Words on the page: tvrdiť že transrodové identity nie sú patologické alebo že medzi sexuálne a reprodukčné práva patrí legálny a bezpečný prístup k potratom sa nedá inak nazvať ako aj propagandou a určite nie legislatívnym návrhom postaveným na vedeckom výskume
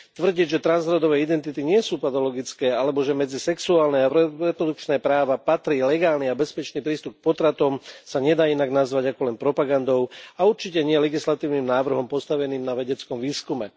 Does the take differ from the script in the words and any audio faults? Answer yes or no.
yes